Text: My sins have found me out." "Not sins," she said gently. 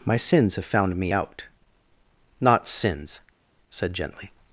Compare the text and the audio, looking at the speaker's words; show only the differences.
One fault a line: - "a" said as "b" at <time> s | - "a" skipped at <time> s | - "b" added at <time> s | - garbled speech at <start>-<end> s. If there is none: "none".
- "she" skipped at 3.2 s